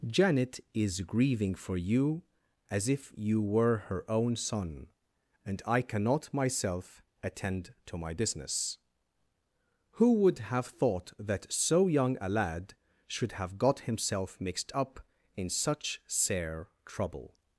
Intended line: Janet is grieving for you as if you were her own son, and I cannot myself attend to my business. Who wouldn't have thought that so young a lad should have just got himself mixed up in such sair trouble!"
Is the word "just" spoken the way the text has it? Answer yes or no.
no